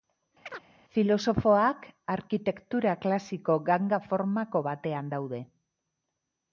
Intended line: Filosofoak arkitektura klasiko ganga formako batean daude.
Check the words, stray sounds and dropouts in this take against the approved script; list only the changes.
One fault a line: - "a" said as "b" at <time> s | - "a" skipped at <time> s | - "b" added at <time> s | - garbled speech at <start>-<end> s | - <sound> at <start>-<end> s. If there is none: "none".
- chirp at 0.5-0.7 s